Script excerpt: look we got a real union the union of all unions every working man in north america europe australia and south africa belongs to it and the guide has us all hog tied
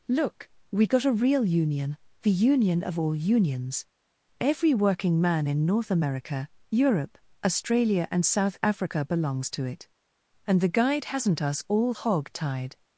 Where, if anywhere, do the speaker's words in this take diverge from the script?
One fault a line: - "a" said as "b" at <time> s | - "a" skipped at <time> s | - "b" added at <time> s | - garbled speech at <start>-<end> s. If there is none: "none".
- "has" said as "hasn't" at 11.1 s